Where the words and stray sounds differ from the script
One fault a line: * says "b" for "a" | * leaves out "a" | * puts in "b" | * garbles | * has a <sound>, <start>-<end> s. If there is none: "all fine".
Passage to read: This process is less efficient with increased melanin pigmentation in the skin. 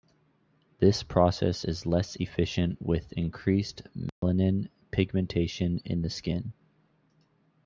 * has a dropout, 4.1-4.2 s